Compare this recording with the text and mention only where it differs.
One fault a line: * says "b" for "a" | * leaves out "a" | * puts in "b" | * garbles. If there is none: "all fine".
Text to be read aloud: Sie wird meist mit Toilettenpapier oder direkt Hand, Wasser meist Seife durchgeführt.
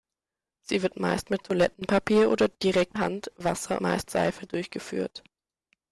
all fine